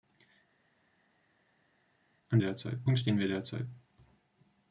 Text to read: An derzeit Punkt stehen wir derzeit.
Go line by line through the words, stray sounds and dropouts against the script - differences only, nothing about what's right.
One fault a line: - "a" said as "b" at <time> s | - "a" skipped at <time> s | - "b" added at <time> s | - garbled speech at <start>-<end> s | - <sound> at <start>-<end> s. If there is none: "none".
none